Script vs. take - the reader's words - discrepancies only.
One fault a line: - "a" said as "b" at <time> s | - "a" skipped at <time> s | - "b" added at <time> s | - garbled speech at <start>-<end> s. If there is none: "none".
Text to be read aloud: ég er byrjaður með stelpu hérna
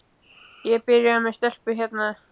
none